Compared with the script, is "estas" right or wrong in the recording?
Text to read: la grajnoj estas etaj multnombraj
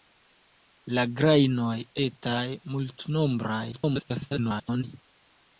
wrong